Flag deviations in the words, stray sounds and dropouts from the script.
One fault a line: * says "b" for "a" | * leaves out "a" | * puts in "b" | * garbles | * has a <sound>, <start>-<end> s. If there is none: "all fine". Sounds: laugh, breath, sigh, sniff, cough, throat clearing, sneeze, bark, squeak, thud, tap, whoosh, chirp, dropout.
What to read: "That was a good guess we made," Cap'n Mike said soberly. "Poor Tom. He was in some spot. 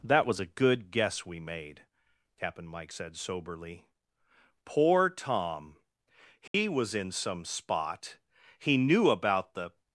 * has a dropout, 6.5-6.5 s
* puts in "He knew about the"